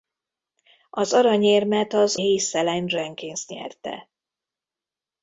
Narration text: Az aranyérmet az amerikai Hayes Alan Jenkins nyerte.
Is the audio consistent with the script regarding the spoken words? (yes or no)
no